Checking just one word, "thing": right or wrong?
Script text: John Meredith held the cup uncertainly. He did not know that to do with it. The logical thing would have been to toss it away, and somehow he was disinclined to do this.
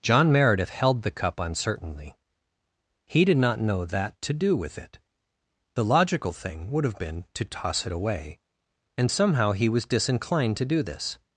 right